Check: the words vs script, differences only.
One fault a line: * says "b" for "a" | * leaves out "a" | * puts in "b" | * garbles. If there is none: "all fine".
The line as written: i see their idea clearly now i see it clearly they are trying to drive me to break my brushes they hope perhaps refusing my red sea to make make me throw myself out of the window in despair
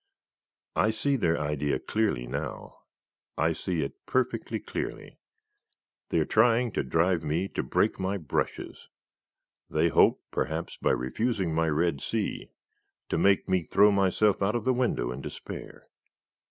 * puts in "perfectly"
* puts in "by"
* leaves out "make"